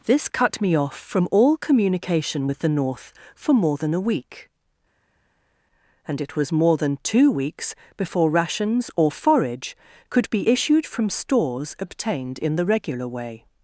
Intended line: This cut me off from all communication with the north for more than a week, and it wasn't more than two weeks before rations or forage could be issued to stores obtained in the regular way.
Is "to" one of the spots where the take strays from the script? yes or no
yes